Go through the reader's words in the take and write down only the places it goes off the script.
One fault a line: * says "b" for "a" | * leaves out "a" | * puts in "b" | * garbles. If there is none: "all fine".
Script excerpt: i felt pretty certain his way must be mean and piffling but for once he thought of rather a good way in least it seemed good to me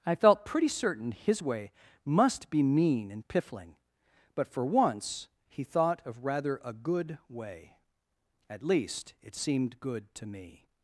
* says "at" for "in"